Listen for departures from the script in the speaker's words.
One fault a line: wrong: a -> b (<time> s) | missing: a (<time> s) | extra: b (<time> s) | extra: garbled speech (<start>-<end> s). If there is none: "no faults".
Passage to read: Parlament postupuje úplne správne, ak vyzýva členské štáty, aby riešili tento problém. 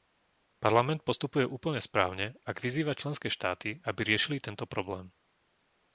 no faults